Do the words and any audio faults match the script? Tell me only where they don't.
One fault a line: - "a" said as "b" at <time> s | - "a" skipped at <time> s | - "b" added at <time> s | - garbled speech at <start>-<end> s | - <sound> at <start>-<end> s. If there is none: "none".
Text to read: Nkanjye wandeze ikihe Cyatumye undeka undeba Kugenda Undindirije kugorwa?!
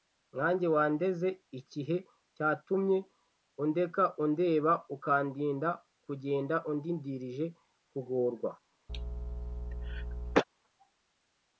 - "Ukandinda" added at 4.9 s
- cough at 8.9-10.4 s